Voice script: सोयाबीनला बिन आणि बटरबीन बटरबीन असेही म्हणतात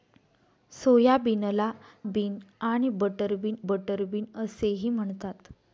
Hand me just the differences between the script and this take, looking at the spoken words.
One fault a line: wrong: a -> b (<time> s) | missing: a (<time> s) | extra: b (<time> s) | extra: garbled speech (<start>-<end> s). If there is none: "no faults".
no faults